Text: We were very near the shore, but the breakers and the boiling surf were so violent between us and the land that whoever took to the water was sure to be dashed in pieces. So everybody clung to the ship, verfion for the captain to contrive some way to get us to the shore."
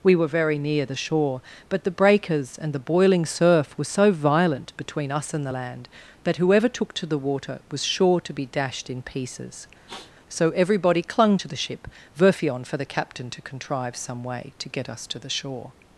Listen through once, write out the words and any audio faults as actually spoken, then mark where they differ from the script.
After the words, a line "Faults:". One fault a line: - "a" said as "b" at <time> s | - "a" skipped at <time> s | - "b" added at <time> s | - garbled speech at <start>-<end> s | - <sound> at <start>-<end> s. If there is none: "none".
We were very near the shore, but the breakers and the boiling surf were so violent between us and the land that whoever took to the water was sure to be dashed in pieces. So everybody clung to the ship, verfion for the captain to contrive some way to get us to the shore."
Faults:
- sniff at 9.9-10.1 s